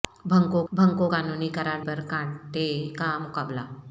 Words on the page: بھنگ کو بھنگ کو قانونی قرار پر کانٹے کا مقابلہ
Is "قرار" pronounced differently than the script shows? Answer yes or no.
no